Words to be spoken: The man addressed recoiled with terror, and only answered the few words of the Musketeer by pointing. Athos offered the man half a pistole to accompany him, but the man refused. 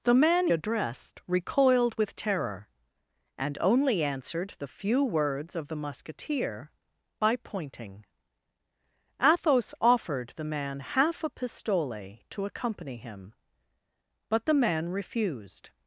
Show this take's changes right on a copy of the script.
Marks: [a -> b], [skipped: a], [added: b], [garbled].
The man addressed recoiled with terror, and only answered the few words of the Musketeer by pointing. Athos offered the man half a pistole to accompany him, but the man refused.